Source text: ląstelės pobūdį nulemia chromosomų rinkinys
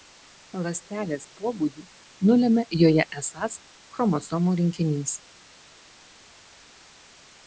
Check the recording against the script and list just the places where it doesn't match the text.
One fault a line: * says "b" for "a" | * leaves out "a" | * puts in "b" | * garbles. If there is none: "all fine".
* puts in "joje esąs"